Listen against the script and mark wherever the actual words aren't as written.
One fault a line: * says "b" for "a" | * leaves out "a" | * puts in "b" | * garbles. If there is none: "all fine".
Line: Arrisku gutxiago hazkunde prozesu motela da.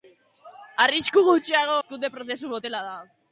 all fine